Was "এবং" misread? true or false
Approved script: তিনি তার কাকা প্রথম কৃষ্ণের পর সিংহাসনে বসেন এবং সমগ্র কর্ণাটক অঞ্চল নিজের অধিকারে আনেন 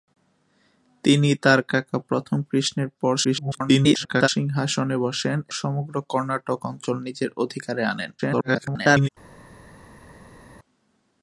true